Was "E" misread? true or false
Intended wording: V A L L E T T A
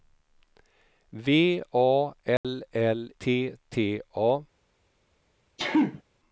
true